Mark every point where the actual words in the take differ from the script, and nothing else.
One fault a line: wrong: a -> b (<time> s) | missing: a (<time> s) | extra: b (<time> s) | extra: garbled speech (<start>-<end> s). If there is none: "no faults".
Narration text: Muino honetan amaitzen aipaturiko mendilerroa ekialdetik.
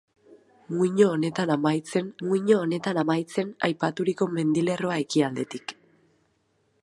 extra: muino honetan amaitzen (2.3 s)